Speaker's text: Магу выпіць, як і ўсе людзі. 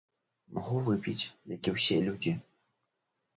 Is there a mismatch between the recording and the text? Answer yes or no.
no